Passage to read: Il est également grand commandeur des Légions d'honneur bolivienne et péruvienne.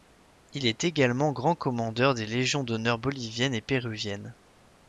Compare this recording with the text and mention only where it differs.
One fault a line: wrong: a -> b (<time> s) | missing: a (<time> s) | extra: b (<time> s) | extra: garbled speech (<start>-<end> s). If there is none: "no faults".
no faults